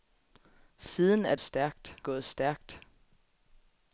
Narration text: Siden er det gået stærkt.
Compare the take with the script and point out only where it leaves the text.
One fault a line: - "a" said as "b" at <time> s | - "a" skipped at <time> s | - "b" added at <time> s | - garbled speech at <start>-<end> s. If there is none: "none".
- "det" said as "stærkt" at 1.4 s